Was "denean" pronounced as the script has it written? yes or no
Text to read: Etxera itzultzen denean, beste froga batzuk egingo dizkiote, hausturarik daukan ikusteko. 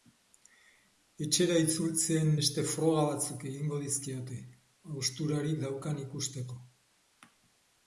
no